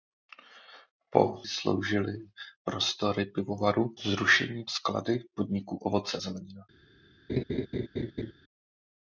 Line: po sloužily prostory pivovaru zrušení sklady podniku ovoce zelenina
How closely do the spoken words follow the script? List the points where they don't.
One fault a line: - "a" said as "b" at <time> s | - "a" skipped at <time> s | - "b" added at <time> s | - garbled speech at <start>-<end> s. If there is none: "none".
none